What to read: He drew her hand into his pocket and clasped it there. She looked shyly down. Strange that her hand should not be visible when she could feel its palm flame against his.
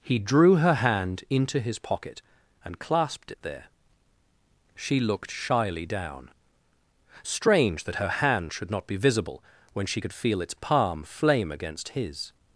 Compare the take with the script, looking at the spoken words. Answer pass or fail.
pass